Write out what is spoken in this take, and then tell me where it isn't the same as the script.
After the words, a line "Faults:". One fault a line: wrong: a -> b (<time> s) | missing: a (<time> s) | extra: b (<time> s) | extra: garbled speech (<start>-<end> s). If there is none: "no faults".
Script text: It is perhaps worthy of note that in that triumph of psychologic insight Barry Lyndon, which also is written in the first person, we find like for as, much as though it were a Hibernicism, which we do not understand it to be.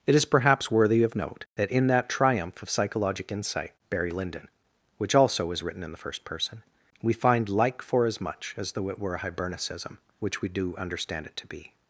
It is perhaps worthy of note that in that triumph of psychologic insight Barry Lyndon, which also is written in the first person, we find like for as, much as though it were a Hibernicism, which we do understand it to be.
Faults:
missing: not (10.8 s)